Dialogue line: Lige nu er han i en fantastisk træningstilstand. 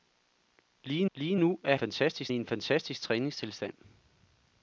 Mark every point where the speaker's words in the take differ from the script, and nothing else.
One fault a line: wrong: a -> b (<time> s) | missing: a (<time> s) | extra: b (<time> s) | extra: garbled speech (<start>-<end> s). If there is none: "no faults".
extra: lige (1.1 s)
wrong: han -> fantastisk (1.8 s)